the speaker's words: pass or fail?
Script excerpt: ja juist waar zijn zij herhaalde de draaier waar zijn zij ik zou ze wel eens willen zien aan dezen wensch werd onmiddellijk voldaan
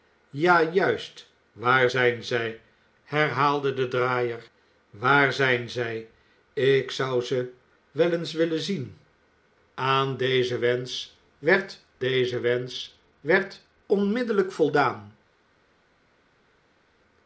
fail